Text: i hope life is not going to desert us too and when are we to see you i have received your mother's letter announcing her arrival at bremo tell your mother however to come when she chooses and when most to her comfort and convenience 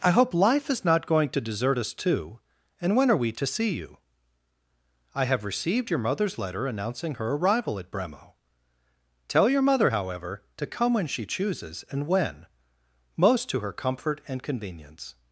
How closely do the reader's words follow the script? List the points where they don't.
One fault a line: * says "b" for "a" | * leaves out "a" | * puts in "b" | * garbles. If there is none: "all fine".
all fine